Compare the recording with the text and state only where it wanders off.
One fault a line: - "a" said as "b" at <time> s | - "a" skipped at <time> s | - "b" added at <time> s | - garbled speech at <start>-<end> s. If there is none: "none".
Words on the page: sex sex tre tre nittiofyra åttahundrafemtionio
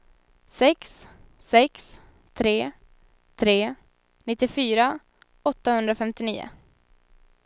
none